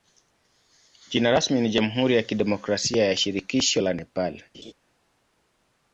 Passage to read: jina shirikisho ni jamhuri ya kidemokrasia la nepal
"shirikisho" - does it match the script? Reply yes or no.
no